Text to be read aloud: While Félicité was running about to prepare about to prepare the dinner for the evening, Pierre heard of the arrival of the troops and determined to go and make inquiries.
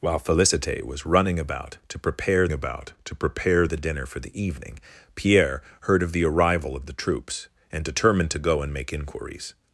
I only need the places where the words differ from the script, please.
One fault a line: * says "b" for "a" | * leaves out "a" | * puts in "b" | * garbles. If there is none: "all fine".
all fine